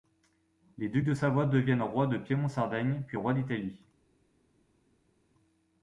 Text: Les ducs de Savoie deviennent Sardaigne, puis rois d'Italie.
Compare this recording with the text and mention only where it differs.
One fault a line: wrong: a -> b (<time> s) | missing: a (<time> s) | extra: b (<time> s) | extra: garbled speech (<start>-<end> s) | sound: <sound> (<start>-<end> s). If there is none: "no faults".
extra: rois de Piémont (1.8 s)